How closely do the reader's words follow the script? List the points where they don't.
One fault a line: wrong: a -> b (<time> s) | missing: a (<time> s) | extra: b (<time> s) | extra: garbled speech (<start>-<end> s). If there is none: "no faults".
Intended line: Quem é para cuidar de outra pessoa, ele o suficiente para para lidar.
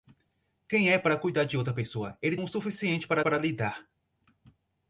no faults